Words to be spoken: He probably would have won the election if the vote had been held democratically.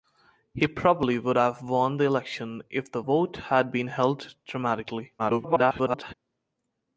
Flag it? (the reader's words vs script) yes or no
yes